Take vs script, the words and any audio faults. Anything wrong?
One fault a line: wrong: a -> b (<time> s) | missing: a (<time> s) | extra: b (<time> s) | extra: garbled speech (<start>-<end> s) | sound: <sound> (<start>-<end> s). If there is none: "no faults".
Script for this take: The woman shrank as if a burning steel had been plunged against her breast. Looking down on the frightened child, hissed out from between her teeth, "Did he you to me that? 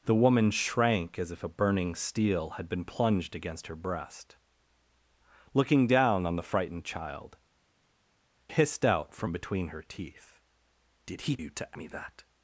no faults